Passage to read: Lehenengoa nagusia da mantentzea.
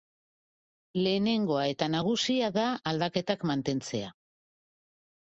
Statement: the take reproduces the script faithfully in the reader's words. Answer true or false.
false